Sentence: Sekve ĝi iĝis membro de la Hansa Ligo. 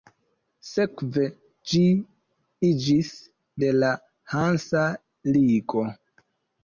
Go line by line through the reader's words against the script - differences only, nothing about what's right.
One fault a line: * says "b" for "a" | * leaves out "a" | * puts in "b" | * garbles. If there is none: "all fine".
* leaves out "membro"